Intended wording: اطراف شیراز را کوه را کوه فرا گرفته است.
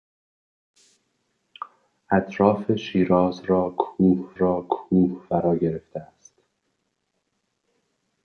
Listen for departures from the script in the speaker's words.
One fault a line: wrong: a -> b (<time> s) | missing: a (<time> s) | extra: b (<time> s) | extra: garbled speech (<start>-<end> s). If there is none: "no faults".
no faults